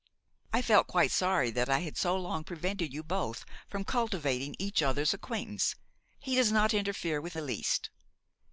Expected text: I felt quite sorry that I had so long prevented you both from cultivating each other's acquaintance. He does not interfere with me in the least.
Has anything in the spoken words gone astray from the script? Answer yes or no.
yes